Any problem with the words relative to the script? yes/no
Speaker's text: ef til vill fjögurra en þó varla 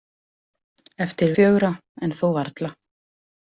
yes